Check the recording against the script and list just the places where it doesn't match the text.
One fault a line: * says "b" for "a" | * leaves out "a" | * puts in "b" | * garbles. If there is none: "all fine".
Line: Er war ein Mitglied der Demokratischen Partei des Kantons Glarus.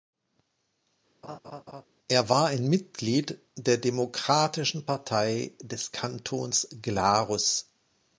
all fine